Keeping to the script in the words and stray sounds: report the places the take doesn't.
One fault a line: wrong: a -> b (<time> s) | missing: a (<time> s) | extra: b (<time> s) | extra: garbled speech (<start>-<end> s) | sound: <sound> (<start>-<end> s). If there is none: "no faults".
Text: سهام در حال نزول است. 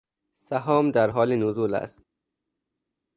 no faults